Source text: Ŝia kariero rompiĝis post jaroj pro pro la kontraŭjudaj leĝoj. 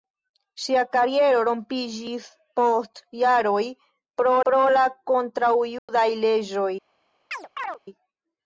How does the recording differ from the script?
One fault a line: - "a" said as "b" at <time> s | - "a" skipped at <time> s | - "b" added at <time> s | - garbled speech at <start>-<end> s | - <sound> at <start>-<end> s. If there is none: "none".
- dropout at 5.8-5.9 s
- chirp at 7.3-7.8 s